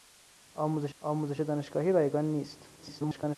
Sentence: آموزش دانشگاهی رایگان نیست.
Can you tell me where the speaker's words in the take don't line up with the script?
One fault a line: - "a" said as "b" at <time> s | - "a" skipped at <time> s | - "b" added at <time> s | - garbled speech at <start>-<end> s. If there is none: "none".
- "آموزش" added at 1.0 s
- garbled speech at 2.8-3.4 s